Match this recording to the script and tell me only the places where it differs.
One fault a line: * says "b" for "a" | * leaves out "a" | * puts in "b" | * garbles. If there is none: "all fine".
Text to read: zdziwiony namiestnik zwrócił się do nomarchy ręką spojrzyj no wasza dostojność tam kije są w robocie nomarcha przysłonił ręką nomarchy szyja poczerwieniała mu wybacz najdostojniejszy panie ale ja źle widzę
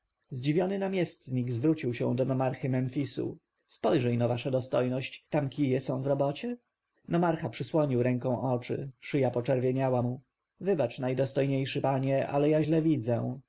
* says "memfisu" for "ręką"
* says "oczy" for "nomarchy"